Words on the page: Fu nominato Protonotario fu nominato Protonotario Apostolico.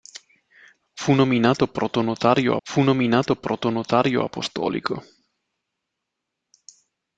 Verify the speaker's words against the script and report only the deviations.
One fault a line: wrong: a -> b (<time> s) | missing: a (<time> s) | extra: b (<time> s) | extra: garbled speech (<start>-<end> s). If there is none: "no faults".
no faults